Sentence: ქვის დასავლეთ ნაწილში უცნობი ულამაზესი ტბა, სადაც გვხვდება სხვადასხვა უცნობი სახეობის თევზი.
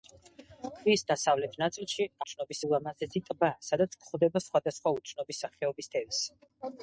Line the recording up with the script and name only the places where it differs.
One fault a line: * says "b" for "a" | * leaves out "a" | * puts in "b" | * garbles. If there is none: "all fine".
all fine